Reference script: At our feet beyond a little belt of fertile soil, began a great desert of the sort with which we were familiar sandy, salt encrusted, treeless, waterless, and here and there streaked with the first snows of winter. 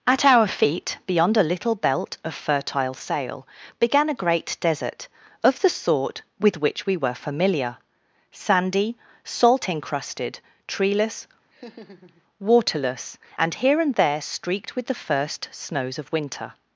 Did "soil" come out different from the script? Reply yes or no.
yes